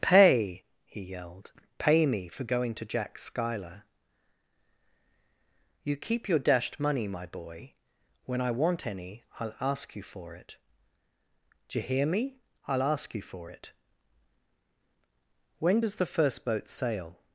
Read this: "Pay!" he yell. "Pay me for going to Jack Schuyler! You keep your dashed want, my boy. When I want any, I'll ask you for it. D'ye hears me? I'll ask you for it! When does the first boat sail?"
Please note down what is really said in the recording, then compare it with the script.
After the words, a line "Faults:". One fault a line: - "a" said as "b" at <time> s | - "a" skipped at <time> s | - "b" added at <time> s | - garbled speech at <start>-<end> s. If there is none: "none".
"Pay!" he yelled. "Pay me for going to Jack Schuyler! You keep your dashed money, my boy. When I want any, I'll ask you for it. D'ye hear me? I'll ask you for it! When does the first boat sail?"
Faults:
- "yell" said as "yelled" at 1.0 s
- "want" said as "money" at 6.8 s
- "hears" said as "hear" at 11.8 s